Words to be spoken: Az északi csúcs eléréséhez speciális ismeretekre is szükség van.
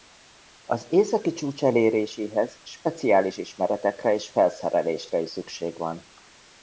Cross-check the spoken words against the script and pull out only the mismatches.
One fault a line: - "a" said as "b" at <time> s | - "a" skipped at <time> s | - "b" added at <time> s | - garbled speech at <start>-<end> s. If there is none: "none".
- "és felszerelésre" added at 4.1 s